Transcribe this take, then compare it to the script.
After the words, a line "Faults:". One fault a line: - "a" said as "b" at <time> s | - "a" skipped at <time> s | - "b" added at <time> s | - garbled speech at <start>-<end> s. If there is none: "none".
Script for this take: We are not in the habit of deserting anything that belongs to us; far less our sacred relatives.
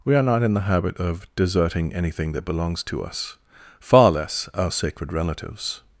We are not in the habit of deserting anything that belongs to us; far less our sacred relatives.
Faults:
none